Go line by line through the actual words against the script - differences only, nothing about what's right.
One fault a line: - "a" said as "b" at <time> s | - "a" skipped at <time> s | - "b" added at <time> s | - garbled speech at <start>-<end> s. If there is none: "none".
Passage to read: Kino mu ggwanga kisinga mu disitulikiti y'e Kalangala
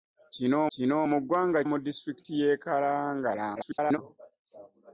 - "kino" added at 0.7 s
- "kisinga" skipped at 1.6 s
- garbled speech at 3.6-4.0 s